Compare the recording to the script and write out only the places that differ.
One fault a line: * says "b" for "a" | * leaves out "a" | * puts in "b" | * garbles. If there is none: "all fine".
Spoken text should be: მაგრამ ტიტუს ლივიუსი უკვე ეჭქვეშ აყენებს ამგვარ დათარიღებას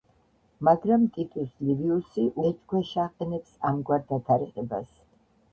* leaves out "უკვე"